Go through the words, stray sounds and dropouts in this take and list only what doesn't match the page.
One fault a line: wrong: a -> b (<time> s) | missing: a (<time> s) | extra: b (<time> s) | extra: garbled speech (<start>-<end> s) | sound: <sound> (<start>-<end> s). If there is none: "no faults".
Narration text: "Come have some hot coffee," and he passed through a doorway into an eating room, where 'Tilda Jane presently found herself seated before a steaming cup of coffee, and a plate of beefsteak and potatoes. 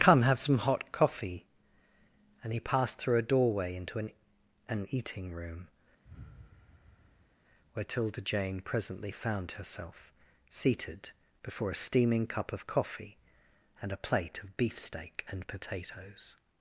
extra: an (4.7 s)
sound: sigh (6.0-7.4 s)